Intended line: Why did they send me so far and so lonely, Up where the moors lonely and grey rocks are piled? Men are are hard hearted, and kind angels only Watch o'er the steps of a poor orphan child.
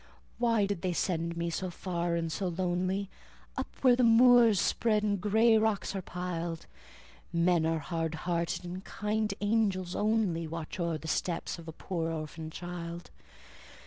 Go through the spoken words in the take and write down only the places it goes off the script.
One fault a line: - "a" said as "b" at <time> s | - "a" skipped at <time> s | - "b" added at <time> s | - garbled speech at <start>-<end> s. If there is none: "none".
- "lonely" said as "spread" at 4.6 s
- "are" skipped at 7.8 s